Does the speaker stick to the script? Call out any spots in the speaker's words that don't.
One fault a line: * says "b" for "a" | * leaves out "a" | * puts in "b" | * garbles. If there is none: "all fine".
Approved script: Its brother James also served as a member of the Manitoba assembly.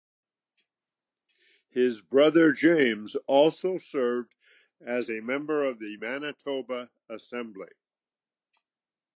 * says "His" for "Its"